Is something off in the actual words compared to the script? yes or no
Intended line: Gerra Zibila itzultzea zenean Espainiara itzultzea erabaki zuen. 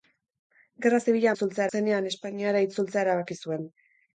no